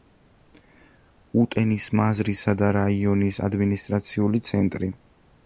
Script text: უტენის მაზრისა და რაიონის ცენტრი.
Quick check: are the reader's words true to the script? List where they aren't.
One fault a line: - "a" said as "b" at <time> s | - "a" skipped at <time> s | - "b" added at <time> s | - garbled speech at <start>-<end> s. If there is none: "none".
- "ადმინისტრაციული" added at 3.5 s